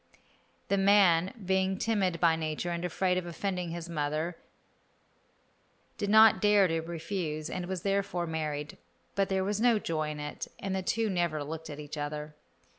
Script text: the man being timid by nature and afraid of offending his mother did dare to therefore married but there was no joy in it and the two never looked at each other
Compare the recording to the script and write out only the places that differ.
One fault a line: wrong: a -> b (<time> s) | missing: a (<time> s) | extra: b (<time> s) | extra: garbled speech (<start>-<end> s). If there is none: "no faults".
extra: not (6.1 s)
extra: refuse and was (6.8 s)